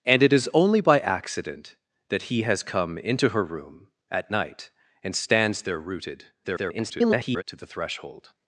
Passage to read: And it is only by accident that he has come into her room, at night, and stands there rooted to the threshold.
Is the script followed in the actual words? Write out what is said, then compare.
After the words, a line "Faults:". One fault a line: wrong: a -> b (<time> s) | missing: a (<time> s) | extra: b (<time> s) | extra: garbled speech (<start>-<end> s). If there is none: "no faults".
And it is only by accident that he has come into her room, at night, and stands there rooted [garbled] to the threshold.
Faults:
extra: garbled speech (6.4-7.4 s)